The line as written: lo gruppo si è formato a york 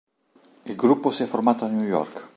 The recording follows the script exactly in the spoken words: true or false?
false